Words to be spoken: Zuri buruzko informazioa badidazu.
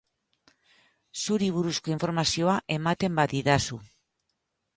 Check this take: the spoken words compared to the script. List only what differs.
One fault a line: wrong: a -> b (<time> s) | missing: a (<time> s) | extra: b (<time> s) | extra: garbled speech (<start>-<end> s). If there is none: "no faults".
extra: ematen (2.8 s)